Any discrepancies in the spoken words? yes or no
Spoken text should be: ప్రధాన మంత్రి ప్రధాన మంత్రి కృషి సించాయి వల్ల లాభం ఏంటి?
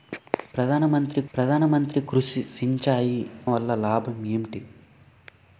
no